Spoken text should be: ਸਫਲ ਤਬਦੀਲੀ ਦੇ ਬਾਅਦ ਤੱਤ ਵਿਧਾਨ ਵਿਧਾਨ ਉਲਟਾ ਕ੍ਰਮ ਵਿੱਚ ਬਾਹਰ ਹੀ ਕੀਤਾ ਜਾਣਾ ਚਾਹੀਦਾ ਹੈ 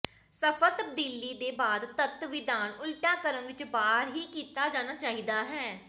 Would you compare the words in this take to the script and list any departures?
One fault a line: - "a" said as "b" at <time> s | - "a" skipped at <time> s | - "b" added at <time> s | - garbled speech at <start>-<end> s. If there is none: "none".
- "ਵਿਧਾਨ" skipped at 2.7 s